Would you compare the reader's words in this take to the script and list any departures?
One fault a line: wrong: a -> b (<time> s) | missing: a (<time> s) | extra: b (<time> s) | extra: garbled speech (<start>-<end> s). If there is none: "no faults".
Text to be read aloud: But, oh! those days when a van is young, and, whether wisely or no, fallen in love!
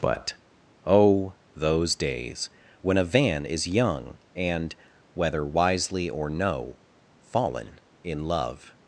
no faults